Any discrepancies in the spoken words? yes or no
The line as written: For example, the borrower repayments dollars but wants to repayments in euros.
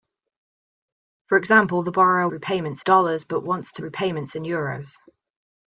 no